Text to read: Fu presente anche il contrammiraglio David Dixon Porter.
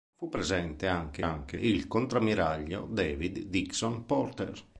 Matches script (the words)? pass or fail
fail